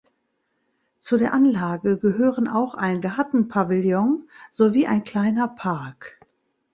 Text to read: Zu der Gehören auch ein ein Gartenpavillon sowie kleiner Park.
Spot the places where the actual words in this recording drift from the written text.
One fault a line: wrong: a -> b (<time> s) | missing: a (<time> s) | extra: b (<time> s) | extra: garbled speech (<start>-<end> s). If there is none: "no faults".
extra: Anlage (1.3 s)
missing: ein (3.0 s)
extra: ein (4.9 s)